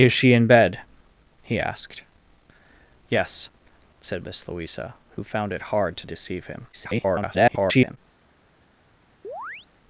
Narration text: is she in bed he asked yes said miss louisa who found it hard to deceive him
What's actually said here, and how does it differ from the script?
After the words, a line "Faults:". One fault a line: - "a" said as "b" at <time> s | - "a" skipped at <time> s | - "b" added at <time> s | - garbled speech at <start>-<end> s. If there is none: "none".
is she in bed he asked yes said miss louisa who found it hard to deceive him [garbled]
Faults:
- garbled speech at 6.7-8.0 s